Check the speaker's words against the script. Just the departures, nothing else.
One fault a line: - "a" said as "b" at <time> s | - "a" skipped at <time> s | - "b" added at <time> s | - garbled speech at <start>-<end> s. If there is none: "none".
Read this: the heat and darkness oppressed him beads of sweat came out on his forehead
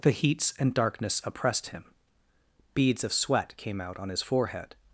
- "heat" said as "heats" at 0.1 s